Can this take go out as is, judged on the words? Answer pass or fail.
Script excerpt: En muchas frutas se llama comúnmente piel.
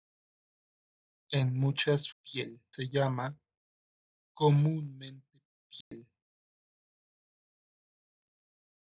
fail